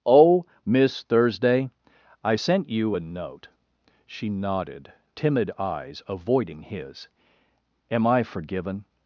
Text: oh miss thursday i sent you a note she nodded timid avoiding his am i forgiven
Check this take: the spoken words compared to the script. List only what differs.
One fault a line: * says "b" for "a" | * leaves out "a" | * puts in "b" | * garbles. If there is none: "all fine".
* puts in "eyes"